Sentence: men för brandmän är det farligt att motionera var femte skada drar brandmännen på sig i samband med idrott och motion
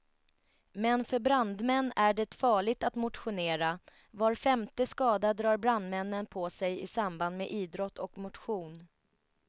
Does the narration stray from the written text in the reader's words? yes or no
no